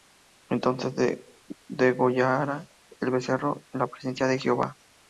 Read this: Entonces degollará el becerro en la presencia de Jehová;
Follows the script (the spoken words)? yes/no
yes